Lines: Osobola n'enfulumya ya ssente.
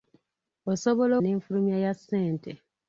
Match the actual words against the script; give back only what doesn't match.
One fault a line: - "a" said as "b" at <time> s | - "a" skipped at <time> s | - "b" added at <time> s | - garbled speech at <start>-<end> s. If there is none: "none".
none